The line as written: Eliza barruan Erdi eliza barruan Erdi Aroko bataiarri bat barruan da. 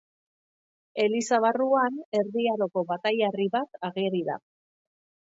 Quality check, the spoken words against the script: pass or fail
fail